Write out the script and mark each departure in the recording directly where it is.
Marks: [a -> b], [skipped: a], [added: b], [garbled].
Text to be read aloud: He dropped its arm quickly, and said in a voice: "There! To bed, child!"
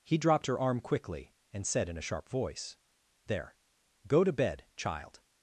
He dropped [its -> her] arm quickly, and said in a [added: sharp] voice: "There! [added: Go] To bed, child!"